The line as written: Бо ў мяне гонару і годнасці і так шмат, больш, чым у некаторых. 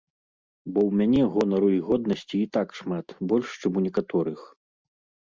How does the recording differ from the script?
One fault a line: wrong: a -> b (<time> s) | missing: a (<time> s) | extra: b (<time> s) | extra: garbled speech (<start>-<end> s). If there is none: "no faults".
no faults